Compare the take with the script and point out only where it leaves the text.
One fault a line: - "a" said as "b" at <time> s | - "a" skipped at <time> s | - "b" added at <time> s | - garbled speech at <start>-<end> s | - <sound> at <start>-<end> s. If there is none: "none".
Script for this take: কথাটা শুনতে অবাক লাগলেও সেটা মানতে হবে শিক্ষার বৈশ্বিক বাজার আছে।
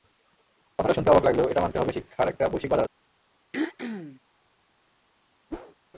- "সেটা" said as "এটা" at 1.5 s
- "একটা" added at 2.3 s
- throat clearing at 3.5-4.2 s
- whoosh at 5.5-5.8 s